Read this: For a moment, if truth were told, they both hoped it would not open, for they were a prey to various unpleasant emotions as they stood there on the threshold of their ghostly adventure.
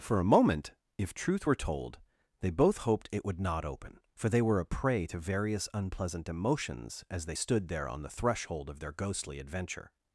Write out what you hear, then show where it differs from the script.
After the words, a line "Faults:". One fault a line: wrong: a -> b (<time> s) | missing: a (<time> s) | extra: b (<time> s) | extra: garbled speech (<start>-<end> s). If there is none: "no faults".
For a moment, if truth were told, they both hoped it would not open, for they were a prey to various unpleasant emotions as they stood there on the threshold of their ghostly adventure.
Faults:
no faults